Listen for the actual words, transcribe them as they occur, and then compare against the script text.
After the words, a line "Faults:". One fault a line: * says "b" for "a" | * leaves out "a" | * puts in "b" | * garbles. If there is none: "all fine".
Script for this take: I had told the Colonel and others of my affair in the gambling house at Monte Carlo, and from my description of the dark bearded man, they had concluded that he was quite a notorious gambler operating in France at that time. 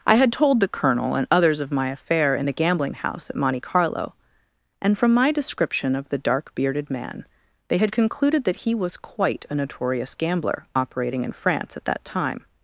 I had told the Colonel and others of my affair in the gambling house at Monte Carlo, and from my description of the dark bearded man, they had concluded that he was quite a notorious gambler operating in France at that time.
Faults:
all fine